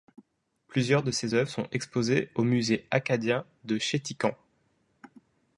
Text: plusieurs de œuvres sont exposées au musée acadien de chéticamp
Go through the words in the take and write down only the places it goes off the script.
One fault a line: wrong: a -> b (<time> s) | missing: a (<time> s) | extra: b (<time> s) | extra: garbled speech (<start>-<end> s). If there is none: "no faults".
extra: ses (1.1 s)